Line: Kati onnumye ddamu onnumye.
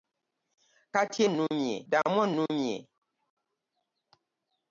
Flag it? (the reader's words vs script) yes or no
no